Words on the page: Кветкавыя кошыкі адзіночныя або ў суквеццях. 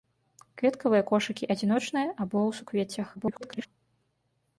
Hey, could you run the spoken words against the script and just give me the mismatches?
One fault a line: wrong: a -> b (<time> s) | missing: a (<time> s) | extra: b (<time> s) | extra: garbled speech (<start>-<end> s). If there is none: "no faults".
extra: garbled speech (3.1-3.7 s)